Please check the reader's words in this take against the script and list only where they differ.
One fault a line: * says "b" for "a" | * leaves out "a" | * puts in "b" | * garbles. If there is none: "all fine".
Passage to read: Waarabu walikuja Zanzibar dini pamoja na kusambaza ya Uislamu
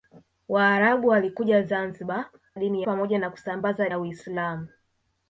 all fine